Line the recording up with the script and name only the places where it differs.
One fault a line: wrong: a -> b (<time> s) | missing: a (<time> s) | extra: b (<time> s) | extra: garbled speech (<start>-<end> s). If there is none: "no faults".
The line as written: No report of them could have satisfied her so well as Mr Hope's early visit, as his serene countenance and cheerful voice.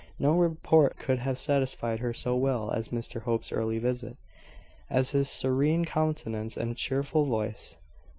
missing: of them (0.9 s)